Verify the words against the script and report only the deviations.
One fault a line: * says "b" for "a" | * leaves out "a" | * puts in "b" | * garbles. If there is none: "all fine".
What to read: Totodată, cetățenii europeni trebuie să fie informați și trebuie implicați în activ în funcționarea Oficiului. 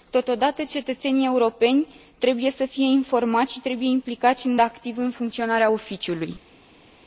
all fine